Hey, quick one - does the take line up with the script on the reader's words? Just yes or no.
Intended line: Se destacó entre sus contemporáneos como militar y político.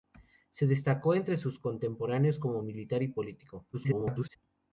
no